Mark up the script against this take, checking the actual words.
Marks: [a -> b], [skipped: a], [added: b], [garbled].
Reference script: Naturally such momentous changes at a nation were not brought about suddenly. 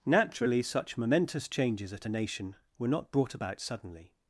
Naturally such momentous changes at a nation were not brought about suddenly.